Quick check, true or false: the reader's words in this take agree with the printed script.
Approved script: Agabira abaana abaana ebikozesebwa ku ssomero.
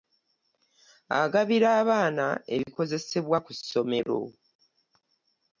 false